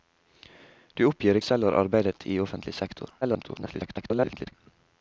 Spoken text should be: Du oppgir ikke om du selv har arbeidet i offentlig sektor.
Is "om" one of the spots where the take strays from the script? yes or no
yes